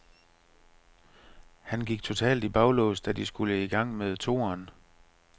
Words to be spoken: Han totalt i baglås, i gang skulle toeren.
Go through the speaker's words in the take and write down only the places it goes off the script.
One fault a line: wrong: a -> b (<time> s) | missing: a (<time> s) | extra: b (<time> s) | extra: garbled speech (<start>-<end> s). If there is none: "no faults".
extra: gik (1.9 s)
extra: da de skulle (3.0 s)
wrong: skulle -> med (4.0 s)